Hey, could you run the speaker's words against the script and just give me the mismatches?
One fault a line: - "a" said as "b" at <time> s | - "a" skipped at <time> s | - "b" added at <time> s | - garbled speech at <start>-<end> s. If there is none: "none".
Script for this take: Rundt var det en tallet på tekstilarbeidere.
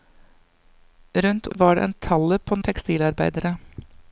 none